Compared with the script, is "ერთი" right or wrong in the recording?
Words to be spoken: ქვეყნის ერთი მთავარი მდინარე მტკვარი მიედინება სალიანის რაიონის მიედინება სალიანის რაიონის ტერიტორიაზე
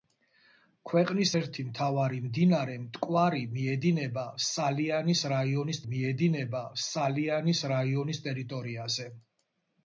right